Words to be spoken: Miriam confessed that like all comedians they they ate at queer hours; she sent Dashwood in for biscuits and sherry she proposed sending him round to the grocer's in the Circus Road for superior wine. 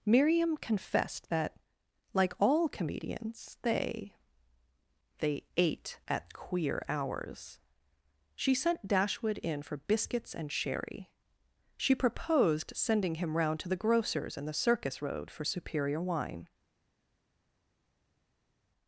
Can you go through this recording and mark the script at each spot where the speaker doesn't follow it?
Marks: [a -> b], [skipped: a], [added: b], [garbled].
Miriam confessed that like all comedians they they ate at queer hours; she sent Dashwood in for biscuits and sherry she proposed sending him round to the grocer's in the Circus Road for superior wine.